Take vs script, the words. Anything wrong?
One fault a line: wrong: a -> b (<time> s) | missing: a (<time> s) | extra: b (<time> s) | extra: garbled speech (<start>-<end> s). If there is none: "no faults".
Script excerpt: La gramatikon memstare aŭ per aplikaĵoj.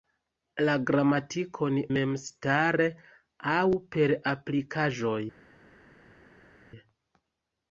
no faults